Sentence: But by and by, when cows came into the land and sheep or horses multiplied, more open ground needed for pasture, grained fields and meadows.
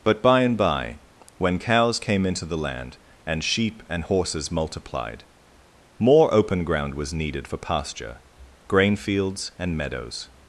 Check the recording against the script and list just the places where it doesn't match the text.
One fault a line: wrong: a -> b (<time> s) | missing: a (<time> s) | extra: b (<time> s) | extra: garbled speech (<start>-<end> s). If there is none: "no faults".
wrong: or -> and (3.9 s)
extra: was (6.9 s)
wrong: grained -> grain (8.7 s)